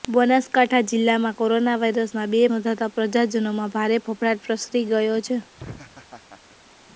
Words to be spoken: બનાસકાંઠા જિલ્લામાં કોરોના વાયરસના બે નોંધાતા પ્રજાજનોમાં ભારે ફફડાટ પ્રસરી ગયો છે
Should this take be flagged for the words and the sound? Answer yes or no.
yes